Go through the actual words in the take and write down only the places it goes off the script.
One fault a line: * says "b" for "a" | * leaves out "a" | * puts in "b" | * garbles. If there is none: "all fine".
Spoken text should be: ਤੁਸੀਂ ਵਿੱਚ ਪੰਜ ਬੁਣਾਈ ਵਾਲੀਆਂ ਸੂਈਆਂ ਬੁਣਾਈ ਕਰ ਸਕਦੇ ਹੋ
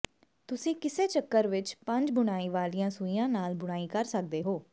* puts in "ਕਿਸੇ ਚੱਕਰ"
* puts in "ਨਾਲ"